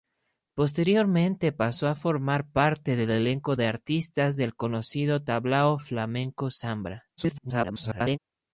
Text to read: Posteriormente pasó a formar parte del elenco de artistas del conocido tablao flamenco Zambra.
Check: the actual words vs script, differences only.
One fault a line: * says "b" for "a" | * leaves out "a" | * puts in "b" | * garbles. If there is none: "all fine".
* garbles